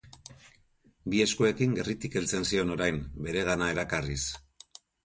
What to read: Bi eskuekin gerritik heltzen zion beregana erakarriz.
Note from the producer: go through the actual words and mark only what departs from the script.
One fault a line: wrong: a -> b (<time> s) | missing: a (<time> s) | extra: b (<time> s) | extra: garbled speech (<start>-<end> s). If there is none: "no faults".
extra: orain (2.8 s)